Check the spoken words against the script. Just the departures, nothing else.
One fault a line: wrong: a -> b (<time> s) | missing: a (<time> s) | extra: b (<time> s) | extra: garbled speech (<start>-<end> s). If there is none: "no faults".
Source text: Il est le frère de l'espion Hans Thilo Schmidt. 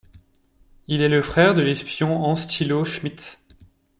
no faults